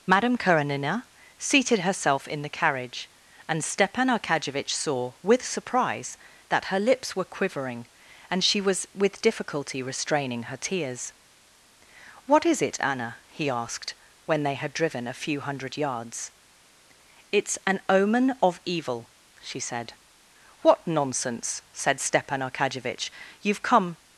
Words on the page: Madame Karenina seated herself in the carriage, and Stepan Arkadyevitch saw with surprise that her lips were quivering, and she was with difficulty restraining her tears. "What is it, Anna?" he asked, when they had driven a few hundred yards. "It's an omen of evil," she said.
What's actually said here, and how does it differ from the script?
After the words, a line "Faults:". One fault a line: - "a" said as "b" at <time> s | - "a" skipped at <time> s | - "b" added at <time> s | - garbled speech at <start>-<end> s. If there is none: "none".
Madame Karenina seated herself in the carriage, and Stepan Arkadyevitch saw with surprise that her lips were quivering, and she was with difficulty restraining her tears. "What is it, Anna?" he asked, when they had driven a few hundred yards. "It's an omen of evil," she said. "What nonsense!" said Stepan Arkadyevitch. "You've come
Faults:
- "What nonsense said Stepan Arkadyevitch You've come" added at 20.6 s